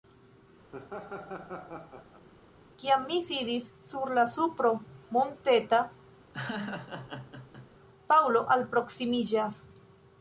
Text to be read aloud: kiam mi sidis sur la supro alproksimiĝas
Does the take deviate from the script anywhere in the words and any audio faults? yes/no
yes